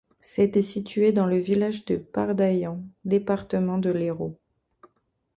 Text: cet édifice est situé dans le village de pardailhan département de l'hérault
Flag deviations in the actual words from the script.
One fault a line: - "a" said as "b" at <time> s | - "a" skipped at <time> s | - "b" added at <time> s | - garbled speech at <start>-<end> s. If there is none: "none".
- "édifice" skipped at 0.6 s